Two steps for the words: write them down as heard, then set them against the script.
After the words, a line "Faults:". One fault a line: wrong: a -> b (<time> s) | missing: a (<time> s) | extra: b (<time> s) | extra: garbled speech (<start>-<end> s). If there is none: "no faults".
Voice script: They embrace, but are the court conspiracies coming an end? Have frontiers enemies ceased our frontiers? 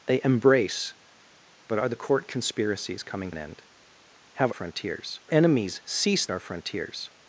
They embrace, but are the court conspiracies coming an end? Have frontiers enemies ceased our frontiers?
Faults:
no faults